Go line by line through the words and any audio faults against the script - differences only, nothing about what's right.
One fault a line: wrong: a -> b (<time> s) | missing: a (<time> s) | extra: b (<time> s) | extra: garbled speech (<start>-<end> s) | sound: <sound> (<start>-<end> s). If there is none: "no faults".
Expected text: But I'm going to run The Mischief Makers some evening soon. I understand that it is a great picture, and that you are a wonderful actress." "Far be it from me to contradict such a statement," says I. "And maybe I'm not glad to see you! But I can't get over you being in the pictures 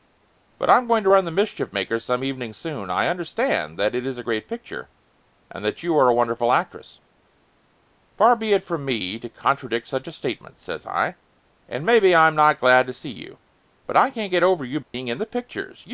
sound: dropout (14.8-14.9 s)